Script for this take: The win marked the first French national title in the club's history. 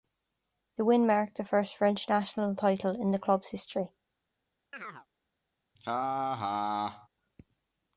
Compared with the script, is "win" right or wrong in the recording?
right